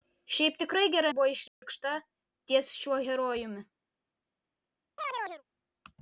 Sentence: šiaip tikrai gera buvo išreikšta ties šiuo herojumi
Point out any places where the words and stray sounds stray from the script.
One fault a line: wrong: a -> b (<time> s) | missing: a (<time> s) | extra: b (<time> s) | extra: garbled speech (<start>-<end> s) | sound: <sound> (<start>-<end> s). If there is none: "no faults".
sound: dropout (1.5-1.6 s)
sound: chirp (5.0-5.4 s)